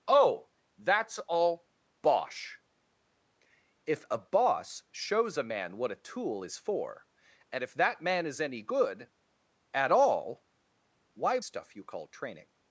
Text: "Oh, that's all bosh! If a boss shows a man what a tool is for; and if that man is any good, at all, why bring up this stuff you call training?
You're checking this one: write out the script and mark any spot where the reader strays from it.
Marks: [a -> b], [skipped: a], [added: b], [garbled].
"Oh, that's all bosh! If a boss shows a man what a tool is for; and if that man is any good, at all, why [skipped: bring up this] stuff you call training?